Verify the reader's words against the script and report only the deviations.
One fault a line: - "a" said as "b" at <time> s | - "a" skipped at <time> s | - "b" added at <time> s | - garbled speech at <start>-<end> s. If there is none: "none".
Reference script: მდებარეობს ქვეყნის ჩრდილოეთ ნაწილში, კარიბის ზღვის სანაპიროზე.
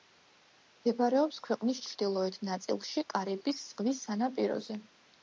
none